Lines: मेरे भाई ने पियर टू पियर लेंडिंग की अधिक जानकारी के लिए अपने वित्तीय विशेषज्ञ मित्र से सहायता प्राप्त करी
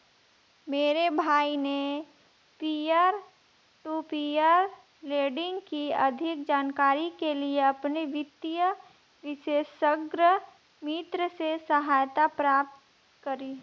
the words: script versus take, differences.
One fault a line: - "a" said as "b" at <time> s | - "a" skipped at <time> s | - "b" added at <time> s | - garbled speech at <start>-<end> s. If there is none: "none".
none